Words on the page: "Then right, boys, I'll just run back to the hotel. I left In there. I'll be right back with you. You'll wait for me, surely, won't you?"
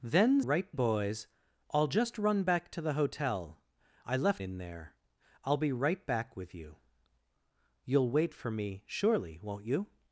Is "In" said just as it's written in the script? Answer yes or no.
yes